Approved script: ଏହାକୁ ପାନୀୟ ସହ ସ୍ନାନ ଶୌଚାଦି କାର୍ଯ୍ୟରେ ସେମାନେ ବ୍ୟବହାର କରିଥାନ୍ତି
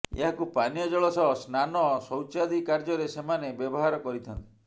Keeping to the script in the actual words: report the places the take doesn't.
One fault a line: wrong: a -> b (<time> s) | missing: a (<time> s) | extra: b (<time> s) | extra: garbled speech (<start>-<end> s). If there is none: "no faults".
extra: ଜଳ (0.9 s)